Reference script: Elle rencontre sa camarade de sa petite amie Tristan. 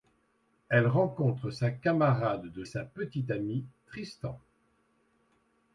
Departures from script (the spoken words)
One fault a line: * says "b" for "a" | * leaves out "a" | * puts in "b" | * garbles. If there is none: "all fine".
all fine